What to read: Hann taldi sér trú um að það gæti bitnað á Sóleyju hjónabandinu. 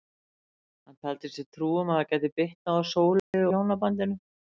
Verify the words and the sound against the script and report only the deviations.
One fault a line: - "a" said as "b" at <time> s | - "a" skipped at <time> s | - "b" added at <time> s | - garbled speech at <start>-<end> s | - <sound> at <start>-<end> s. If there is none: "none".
- dropout at 3.2-3.3 s